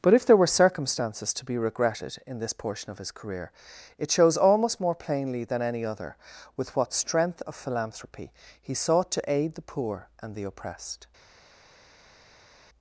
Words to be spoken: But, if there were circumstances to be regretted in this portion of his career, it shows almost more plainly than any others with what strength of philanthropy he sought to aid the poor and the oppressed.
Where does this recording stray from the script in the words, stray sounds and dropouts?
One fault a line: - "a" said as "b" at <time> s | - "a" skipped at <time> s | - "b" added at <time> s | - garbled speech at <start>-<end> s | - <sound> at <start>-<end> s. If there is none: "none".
- "others" said as "other" at 5.8 s